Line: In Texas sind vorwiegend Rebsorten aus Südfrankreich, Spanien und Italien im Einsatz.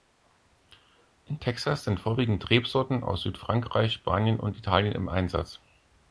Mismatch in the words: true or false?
false